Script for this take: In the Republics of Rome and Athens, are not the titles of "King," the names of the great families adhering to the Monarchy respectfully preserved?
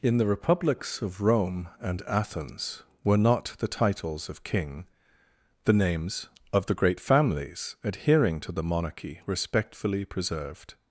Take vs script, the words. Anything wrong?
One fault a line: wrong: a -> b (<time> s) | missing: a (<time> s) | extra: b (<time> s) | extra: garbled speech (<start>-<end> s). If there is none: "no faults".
wrong: are -> were (3.0 s)